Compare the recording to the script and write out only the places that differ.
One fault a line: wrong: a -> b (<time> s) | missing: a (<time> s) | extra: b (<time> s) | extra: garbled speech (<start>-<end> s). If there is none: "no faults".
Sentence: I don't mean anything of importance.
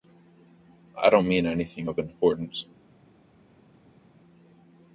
no faults